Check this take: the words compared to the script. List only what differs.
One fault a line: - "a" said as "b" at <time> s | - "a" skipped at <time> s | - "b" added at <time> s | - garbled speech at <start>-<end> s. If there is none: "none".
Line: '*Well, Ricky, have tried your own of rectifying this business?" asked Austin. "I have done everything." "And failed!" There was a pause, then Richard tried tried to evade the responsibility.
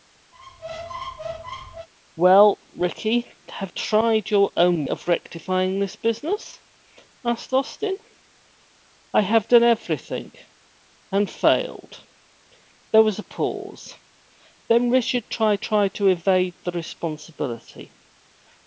none